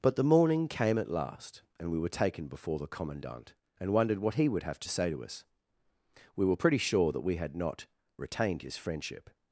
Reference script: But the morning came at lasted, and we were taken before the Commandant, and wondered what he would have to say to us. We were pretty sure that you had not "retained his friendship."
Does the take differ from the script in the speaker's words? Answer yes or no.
yes